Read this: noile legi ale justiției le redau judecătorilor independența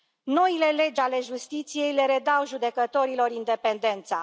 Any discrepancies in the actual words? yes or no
no